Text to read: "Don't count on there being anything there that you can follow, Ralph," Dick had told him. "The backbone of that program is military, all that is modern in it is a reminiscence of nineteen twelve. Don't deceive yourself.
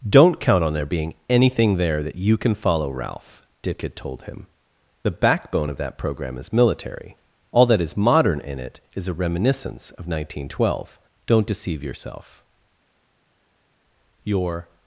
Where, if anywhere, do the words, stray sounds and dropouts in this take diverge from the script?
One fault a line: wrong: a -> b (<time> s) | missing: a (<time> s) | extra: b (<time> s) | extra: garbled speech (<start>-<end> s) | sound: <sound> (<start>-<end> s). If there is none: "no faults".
extra: Your (14.2 s)